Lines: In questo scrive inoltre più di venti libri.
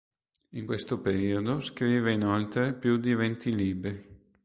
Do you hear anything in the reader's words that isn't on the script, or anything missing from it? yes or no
yes